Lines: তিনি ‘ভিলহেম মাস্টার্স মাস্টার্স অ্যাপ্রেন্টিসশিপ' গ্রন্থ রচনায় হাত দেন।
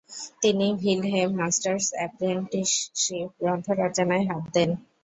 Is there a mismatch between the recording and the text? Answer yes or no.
yes